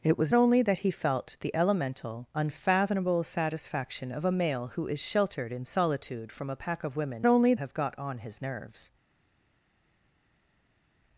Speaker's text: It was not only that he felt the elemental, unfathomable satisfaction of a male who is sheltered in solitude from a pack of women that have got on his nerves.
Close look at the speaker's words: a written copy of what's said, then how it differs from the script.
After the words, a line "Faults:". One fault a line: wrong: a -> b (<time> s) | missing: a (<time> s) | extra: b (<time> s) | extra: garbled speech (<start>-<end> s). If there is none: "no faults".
It was only that he felt the elemental, unfathomable satisfaction of a male who is sheltered in solitude from a pack of women only have got on his nerves.
Faults:
missing: not (0.3 s)
wrong: that -> only (7.3 s)